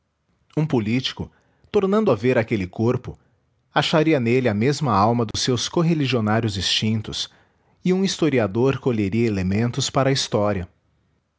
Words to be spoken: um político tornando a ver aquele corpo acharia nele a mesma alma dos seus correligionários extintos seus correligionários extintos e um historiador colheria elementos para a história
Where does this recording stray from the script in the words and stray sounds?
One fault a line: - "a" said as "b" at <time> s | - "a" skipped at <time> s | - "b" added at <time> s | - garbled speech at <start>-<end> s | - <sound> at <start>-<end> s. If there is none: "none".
- dropout at 5.3-5.3 s
- "seus correligionários extintos" skipped at 7.3 s